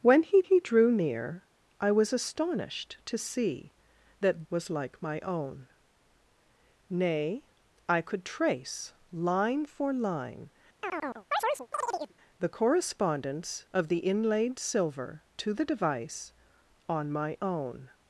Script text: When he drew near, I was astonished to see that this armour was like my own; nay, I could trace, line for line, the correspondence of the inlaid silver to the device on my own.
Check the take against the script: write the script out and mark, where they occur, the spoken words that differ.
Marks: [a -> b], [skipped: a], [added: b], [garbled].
When he [added: he] drew near, I was astonished to see that [skipped: this armour] was like my own; nay, I could trace, line for line, the correspondence of the inlaid silver to the device on my own.